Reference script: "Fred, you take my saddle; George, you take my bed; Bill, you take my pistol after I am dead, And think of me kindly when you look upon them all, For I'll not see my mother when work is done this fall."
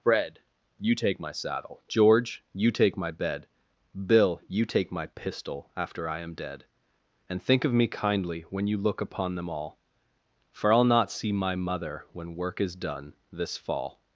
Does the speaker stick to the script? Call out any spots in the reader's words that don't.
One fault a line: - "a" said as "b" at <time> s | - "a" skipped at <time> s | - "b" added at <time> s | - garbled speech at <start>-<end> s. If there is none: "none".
none